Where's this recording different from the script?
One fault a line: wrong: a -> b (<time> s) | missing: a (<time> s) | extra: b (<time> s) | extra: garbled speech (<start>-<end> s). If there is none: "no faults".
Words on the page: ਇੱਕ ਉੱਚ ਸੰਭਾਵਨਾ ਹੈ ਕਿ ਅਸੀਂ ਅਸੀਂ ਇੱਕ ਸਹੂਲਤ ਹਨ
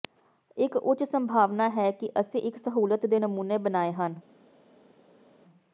missing: ਅਸੀਂ (2.4 s)
extra: ਦੇ ਨਮੂਨੇ ਬਣਾਏ (3.0 s)